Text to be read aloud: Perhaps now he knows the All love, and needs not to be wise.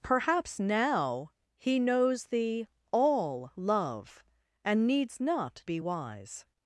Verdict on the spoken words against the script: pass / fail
fail